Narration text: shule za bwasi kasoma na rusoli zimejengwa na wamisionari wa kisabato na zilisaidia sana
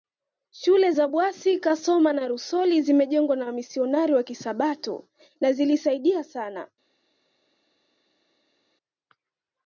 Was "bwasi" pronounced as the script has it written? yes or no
yes